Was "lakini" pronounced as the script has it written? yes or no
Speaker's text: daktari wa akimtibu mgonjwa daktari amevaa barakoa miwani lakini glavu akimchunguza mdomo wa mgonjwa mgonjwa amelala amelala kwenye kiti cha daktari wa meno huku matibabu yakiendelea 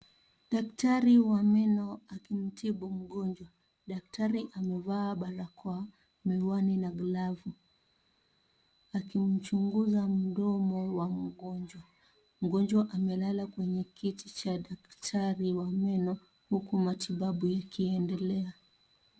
no